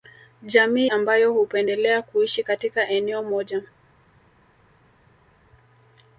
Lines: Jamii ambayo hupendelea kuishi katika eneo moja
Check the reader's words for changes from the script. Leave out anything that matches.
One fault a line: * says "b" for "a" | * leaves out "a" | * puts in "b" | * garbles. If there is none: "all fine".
all fine